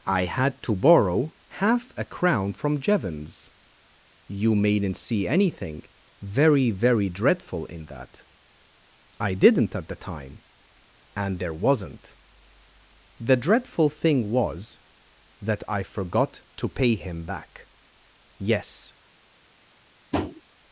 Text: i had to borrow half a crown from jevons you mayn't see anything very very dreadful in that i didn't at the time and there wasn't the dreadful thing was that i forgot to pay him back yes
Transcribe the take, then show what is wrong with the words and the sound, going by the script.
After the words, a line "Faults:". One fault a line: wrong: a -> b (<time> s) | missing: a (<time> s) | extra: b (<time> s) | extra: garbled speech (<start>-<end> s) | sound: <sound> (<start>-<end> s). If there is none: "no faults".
i had to borrow half a crown from jevons you mayn't see anything very very dreadful in that i didn't at the time and there wasn't the dreadful thing was that i forgot to pay him back yes
Faults:
sound: tap (20.1-20.4 s)